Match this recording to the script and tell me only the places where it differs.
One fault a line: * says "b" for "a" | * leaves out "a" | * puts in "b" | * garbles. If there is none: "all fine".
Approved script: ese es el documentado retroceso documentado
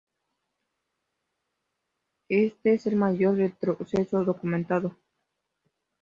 * says "este" for "ese"
* says "mayor" for "documentado"